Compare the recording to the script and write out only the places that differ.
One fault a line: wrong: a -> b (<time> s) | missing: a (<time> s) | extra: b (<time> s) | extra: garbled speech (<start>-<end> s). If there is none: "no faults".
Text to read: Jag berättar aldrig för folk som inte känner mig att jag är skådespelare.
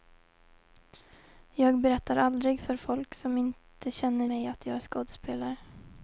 no faults